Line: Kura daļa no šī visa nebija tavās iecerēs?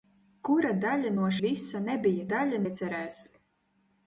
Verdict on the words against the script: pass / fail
fail